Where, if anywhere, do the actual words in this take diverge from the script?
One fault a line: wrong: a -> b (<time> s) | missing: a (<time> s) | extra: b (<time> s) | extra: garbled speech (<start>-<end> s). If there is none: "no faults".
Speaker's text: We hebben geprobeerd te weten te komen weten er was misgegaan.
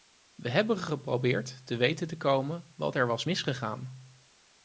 wrong: weten -> wat (2.8 s)